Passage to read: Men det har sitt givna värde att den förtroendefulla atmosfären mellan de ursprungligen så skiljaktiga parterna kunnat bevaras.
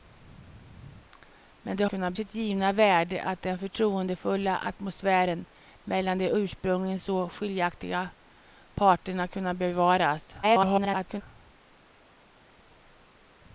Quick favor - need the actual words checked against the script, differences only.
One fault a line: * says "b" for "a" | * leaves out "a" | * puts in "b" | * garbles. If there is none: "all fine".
* says "kunnat" for "har"
* garbles